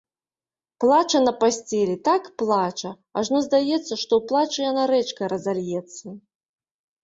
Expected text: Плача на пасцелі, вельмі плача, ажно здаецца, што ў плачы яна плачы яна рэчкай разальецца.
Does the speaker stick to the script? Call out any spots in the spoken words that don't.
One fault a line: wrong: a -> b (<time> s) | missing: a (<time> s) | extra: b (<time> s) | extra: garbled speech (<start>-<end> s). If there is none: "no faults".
wrong: вельмі -> так (2.1 s)
missing: плачы яна (4.8 s)